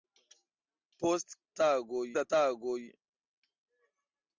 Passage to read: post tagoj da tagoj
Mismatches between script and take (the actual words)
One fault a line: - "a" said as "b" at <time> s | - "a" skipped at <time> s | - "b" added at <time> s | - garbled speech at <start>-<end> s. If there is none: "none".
none